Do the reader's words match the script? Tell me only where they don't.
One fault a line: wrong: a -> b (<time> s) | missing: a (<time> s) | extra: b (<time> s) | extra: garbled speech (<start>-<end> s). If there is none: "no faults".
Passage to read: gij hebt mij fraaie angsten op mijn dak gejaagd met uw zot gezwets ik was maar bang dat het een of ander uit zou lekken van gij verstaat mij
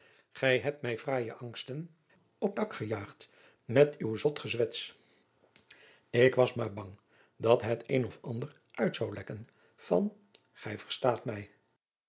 missing: mijn (2.5 s)